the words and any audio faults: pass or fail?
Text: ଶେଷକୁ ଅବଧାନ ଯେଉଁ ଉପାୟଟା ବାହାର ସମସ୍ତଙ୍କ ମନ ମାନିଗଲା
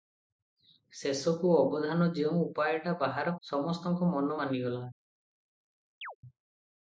fail